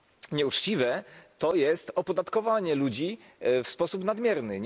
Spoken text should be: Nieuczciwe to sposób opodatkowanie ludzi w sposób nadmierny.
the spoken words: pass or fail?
fail